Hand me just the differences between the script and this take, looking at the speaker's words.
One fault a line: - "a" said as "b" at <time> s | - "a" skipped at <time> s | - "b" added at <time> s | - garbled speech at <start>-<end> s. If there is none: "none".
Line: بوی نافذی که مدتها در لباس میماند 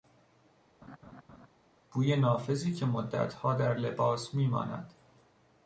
none